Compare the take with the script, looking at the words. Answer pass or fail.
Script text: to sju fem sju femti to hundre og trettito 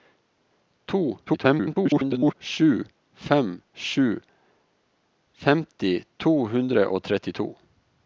fail